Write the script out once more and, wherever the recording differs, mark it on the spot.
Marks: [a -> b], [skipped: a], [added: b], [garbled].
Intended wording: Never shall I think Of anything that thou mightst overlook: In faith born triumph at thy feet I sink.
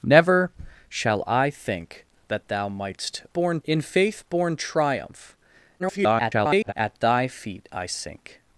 Never shall I think [skipped: Of anything] that thou mightst [overlook: -> born] In faith born triumph [garbled] at thy feet I sink.